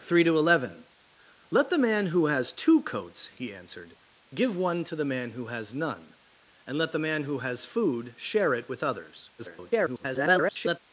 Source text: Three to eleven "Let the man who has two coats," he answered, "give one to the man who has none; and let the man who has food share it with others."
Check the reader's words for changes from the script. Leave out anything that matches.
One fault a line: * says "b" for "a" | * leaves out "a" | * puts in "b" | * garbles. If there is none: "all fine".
* garbles